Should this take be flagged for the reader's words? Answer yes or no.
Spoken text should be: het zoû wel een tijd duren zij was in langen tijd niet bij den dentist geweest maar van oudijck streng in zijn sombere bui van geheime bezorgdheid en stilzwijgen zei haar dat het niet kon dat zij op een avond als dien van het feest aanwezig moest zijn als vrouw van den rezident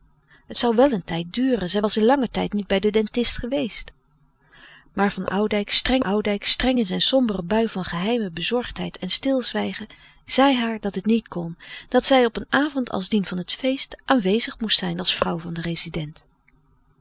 yes